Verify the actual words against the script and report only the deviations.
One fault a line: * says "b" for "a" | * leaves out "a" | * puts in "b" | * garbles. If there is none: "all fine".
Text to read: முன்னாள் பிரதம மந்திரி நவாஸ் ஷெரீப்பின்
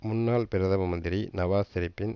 all fine